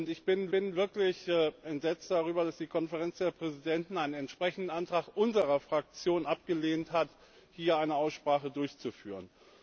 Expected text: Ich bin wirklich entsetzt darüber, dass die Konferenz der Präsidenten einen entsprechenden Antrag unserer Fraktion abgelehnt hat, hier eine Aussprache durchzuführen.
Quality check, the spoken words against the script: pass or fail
fail